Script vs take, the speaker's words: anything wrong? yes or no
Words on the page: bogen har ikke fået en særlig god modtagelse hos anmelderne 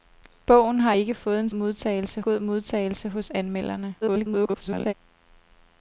yes